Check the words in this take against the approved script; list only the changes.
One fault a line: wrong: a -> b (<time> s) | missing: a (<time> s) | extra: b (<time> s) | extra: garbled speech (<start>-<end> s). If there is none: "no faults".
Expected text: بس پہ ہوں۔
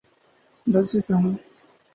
no faults